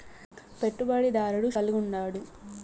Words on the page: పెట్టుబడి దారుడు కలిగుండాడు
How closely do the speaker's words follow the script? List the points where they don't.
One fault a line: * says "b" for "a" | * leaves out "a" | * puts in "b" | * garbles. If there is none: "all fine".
all fine